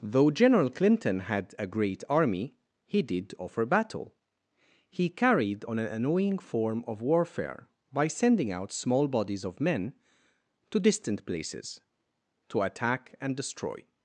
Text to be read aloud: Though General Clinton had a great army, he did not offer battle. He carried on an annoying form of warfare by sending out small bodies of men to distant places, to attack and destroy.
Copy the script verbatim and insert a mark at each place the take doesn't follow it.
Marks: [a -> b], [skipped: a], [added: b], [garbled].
Though General Clinton had a great army, he did [skipped: not] offer battle. He carried on an annoying form of warfare by sending out small bodies of men to distant places, to attack and destroy.